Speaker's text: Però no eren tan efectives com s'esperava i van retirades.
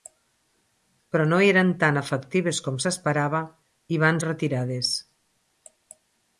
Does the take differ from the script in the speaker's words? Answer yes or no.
no